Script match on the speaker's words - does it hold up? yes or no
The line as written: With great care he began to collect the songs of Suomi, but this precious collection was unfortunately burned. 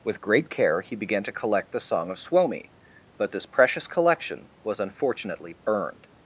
no